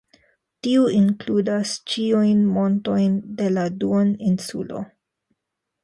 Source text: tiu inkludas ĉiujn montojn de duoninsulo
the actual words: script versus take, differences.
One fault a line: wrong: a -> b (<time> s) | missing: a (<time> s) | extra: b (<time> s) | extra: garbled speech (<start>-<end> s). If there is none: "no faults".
extra: la (3.6 s)